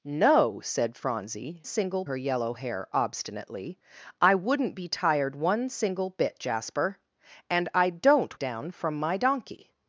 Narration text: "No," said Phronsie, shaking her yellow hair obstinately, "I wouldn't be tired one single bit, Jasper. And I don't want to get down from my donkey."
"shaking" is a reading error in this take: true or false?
true